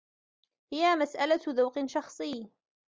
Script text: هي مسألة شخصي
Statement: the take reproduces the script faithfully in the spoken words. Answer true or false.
false